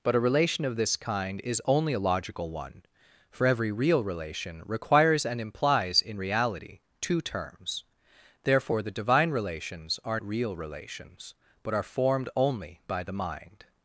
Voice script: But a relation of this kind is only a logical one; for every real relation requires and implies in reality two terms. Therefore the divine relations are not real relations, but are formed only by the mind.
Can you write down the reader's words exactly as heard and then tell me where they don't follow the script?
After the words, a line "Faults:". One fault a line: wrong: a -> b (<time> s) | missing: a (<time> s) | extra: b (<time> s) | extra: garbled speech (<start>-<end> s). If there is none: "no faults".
But a relation of this kind is only a logical one; for every real relation requires and implies in reality two terms. Therefore the divine relations are real relations, but are formed only by the mind.
Faults:
missing: not (10.2 s)